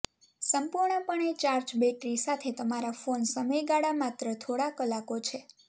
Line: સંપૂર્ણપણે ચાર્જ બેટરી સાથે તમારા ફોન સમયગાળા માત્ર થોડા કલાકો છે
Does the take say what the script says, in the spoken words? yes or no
yes